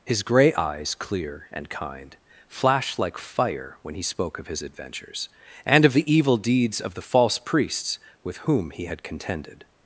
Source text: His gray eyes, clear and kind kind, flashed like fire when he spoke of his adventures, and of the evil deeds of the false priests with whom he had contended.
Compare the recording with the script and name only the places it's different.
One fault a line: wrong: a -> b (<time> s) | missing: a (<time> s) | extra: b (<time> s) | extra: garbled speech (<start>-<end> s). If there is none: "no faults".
missing: kind (2.2 s)